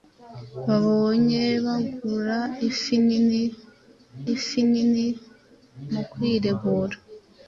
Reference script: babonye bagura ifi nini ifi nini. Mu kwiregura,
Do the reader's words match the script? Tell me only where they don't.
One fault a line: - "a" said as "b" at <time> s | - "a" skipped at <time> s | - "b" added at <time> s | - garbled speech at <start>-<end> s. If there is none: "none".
none